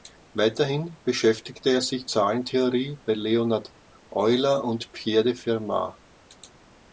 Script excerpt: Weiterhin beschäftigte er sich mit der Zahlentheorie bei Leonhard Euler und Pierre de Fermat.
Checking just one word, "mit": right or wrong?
wrong